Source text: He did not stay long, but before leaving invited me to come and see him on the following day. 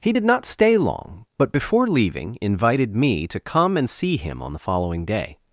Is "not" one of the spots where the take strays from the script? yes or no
no